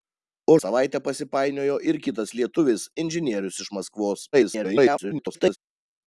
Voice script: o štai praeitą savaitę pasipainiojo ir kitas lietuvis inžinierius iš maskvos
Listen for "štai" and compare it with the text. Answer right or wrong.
wrong